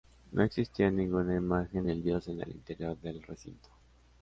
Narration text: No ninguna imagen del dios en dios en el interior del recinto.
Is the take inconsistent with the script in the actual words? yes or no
yes